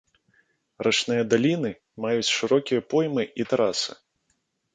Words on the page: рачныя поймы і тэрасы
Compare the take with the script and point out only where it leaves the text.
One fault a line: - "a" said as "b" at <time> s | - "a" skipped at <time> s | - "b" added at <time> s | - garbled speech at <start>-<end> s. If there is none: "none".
- "даліны маюць шырокія" added at 1.3 s